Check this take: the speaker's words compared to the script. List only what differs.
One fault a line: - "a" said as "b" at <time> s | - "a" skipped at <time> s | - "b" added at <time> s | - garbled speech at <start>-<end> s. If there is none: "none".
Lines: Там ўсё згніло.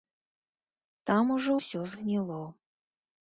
- "ужо" added at 1.4 s